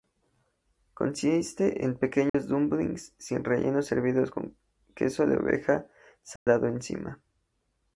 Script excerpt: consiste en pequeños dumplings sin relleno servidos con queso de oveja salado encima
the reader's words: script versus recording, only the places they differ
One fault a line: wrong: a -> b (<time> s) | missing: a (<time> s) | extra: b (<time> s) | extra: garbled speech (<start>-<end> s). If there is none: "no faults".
no faults